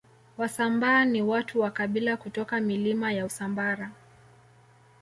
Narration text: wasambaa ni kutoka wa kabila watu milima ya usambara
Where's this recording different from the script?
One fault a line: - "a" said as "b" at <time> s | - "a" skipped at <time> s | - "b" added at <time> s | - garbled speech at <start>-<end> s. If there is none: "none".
- "kutoka" said as "watu" at 1.2 s
- "watu" said as "kutoka" at 2.2 s